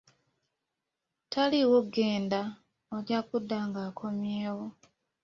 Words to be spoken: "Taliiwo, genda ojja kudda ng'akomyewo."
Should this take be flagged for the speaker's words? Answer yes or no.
no